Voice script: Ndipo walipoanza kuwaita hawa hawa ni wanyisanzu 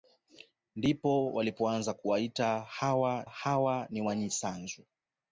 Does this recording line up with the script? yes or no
yes